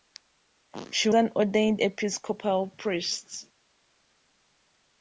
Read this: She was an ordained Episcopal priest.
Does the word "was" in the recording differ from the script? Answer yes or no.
yes